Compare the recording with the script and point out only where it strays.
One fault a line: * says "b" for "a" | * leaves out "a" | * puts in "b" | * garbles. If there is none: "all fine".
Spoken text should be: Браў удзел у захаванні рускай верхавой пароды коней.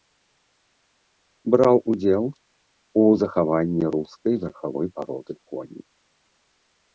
all fine